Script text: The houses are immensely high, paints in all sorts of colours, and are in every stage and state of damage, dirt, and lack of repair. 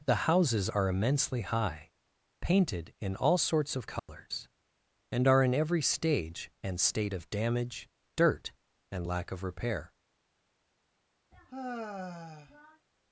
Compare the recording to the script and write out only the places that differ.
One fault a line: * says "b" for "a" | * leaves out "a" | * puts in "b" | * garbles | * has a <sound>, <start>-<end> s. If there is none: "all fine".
* says "painted" for "paints"
* has a dropout, 4.0-4.1 s
* has a sigh, 11.3-12.9 s